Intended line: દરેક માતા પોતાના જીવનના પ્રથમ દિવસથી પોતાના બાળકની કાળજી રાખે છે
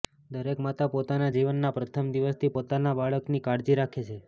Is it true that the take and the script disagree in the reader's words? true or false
false